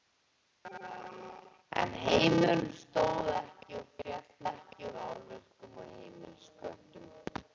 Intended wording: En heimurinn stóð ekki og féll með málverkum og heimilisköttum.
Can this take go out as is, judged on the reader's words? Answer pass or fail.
fail